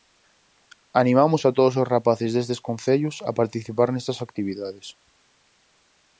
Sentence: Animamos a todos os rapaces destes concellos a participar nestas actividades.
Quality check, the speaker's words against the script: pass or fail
pass